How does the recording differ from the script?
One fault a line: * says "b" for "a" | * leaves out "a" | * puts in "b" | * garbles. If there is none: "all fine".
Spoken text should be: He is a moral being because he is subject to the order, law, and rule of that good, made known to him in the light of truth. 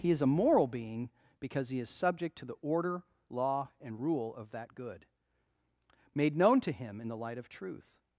all fine